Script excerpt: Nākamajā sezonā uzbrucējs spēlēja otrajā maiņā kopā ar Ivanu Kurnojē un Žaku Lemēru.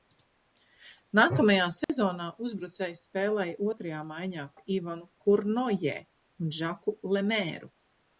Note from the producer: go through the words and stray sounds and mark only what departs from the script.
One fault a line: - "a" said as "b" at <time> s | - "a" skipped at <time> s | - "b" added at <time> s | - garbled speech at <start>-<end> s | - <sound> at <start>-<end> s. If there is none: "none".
- dropout at 1.8-1.9 s
- "kopā" skipped at 4.5 s